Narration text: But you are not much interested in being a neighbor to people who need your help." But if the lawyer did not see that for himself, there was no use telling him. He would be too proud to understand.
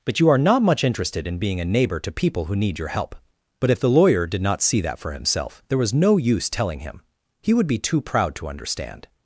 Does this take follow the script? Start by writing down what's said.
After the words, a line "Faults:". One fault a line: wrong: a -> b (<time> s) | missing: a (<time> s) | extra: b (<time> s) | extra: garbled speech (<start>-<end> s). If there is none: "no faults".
But you are not much interested in being a neighbor to people who need your help." But if the lawyer did not see that for himself, there was no use telling him. He would be too proud to understand.
Faults:
no faults